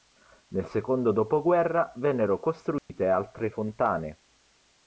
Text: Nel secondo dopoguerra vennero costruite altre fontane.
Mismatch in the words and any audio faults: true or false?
true